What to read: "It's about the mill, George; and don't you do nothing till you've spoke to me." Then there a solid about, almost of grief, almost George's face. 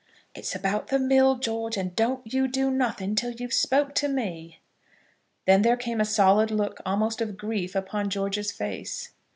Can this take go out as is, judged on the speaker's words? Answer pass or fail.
fail